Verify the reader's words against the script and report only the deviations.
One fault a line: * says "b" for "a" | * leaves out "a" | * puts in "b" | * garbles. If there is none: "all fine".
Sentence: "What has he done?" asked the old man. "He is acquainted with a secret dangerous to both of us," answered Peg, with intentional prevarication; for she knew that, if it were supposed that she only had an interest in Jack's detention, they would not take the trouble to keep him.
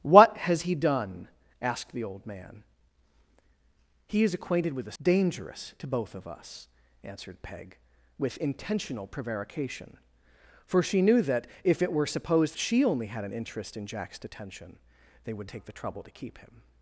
* leaves out "secret"
* leaves out "that"
* leaves out "not"